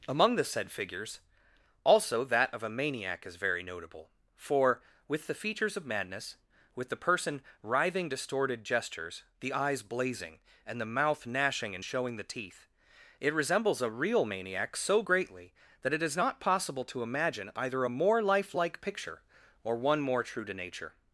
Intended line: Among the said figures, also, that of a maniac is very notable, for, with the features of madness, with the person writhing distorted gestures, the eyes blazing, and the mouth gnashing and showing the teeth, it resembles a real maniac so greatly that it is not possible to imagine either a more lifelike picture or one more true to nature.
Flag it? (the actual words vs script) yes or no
no